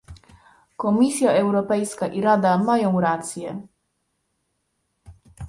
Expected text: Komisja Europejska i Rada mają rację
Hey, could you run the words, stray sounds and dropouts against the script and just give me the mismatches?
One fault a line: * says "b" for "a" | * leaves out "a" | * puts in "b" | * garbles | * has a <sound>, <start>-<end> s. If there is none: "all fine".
all fine